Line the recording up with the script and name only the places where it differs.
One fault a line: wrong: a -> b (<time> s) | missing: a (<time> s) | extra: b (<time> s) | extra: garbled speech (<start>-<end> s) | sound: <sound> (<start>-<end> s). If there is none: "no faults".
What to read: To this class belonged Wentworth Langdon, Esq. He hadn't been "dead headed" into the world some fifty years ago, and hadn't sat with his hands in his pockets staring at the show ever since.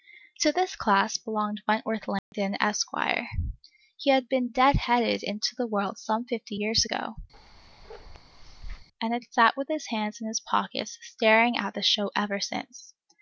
sound: dropout (2.2-2.3 s)
wrong: hadn't -> had (4.1 s)
sound: bark (7.3-8.9 s)
wrong: hadn't -> had (9.1 s)